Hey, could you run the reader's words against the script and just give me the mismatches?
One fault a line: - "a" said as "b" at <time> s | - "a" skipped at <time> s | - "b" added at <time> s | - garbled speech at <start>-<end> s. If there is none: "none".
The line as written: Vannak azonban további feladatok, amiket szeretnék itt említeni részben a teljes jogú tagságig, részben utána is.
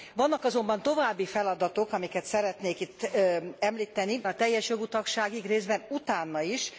- "részben" skipped at 4.2 s